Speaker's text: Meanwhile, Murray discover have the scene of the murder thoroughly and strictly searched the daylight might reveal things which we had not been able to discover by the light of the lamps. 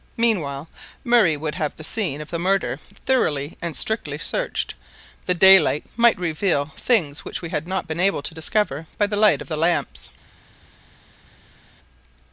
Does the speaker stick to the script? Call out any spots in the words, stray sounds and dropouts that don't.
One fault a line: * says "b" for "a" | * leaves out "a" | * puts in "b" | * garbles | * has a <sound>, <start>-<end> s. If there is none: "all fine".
* says "would" for "discover"